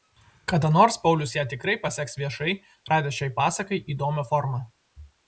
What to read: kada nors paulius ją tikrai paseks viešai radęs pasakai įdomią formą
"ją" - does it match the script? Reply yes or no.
yes